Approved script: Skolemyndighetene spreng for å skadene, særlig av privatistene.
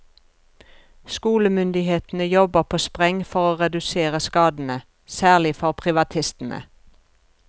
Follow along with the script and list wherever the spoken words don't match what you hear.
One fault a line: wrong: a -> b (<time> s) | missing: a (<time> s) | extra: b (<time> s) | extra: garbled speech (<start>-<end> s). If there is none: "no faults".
extra: jobber på (2.2 s)
extra: redusere (3.6 s)
wrong: av -> for (5.5 s)